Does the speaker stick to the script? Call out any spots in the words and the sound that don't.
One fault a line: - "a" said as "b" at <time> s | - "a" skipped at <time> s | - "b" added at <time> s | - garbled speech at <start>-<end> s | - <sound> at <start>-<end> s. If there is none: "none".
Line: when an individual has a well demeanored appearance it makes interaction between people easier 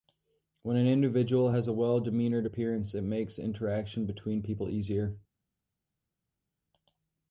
none